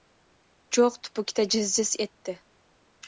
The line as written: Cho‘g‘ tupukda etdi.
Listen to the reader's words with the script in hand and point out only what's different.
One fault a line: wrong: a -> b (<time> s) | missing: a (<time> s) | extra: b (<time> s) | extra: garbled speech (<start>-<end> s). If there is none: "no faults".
extra: jiz jiz (1.6 s)